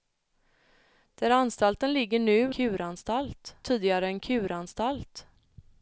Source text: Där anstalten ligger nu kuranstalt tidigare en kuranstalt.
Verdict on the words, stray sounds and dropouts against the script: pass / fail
pass